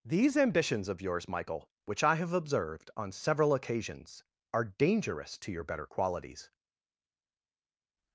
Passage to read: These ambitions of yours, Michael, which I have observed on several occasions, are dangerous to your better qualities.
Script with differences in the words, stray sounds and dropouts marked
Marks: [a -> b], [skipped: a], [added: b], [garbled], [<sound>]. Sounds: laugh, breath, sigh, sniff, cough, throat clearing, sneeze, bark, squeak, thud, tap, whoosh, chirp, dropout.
These ambitions of yours, Michael, which I have observed on several occasions, are dangerous to your better qualities.